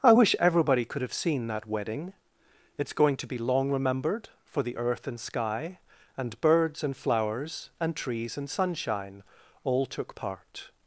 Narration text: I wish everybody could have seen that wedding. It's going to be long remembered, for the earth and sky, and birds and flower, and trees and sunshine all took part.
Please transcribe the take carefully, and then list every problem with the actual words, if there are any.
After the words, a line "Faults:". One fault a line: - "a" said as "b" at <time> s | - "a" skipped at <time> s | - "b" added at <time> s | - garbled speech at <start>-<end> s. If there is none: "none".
I wish everybody could have seen that wedding. It's going to be long remembered, for the earth and sky, and birds and flowers, and trees and sunshine all took part.
Faults:
- "flower" said as "flowers" at 7.0 s